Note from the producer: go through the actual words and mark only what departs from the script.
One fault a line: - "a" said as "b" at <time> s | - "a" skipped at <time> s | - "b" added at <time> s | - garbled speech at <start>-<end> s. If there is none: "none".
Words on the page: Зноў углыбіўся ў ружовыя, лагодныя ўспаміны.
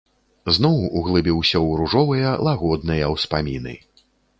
none